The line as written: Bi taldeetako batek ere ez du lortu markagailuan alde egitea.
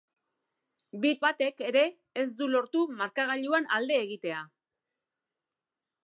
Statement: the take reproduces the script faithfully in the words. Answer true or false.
false